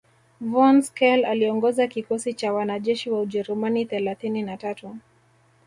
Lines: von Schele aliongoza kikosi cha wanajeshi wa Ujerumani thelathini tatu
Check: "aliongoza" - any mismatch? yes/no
no